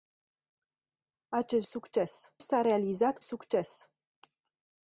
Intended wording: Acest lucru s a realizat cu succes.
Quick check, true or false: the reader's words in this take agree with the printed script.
false